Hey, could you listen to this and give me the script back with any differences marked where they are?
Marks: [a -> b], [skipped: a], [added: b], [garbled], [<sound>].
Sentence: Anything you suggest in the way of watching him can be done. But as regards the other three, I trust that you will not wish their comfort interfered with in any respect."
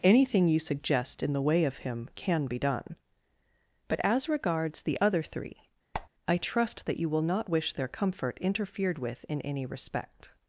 Anything you suggest in the way of [skipped: watching] him can be done. But as regards the other three, [squeak] I trust that you will not wish their comfort interfered with in any respect."